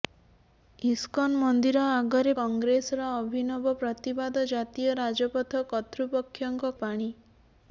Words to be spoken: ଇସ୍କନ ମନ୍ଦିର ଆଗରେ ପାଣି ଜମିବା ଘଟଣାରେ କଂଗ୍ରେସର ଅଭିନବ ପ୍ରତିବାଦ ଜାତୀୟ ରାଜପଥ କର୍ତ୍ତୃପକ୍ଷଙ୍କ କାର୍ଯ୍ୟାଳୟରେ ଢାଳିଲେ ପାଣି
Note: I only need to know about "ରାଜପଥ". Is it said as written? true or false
true